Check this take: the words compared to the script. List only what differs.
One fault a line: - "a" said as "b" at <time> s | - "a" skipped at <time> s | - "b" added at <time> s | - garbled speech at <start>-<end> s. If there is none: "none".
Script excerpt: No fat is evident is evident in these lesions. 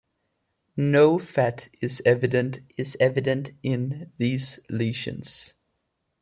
none